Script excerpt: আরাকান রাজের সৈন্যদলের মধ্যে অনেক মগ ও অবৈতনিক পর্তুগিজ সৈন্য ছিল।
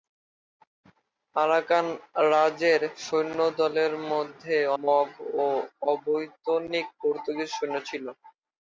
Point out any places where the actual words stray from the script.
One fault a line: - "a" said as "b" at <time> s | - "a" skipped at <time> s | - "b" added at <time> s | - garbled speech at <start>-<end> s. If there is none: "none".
- "অনেক" skipped at 4.6 s